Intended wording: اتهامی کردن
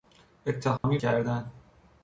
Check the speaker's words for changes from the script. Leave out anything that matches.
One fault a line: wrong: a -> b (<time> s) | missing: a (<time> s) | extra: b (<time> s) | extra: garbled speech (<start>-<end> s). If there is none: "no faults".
no faults